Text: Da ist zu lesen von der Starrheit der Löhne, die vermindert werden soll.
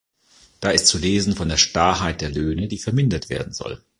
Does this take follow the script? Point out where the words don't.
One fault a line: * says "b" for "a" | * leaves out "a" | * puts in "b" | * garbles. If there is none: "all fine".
all fine